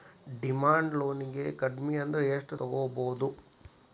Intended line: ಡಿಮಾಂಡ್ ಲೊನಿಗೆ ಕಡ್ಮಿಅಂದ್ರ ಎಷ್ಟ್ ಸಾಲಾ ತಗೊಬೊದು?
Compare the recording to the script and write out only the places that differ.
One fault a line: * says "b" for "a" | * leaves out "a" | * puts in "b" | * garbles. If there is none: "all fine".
* leaves out "ಸಾಲಾ"